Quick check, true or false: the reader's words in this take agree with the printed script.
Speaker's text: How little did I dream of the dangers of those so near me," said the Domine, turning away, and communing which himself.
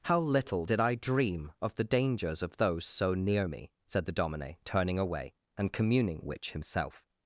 true